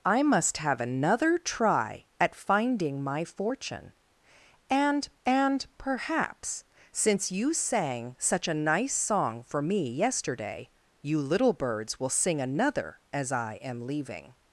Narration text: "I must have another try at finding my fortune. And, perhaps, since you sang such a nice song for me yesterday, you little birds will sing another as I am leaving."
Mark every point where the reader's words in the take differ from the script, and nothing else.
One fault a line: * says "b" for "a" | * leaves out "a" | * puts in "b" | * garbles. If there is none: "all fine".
* puts in "and"